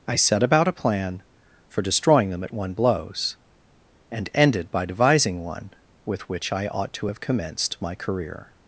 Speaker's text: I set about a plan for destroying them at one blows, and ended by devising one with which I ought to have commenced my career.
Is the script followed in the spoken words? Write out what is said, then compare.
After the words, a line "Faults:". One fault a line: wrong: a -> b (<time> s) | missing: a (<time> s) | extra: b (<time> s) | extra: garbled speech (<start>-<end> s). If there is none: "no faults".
I set about a plan for destroying them at one blows, and ended by devising one with which I ought to have commenced my career.
Faults:
no faults